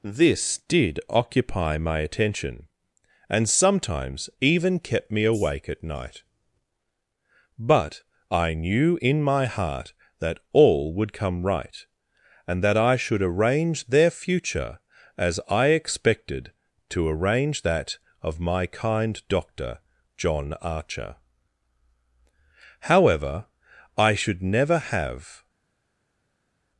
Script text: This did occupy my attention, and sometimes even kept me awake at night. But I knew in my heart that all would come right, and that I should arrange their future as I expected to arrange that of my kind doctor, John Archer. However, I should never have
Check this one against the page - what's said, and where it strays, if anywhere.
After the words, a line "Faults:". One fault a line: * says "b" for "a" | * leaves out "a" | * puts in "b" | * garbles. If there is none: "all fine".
This did occupy my attention, and sometimes even kept me awake at night. But I knew in my heart that all would come right, and that I should arrange their future as I expected to arrange that of my kind doctor, John Archer. However, I should never have
Faults:
all fine